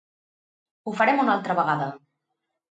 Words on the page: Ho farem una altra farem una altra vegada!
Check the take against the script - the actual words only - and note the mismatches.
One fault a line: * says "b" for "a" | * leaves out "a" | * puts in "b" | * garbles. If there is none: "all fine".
* leaves out "farem una altra"